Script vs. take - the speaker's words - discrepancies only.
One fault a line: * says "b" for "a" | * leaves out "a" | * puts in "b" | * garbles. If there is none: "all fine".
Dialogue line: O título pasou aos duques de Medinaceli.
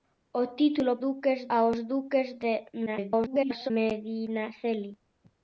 * says "duques" for "pasou"
* garbles